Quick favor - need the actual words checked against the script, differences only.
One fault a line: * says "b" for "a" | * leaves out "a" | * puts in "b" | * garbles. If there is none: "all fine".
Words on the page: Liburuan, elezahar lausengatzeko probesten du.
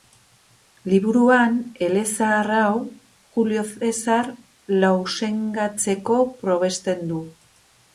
* puts in "hau Julio Zesar"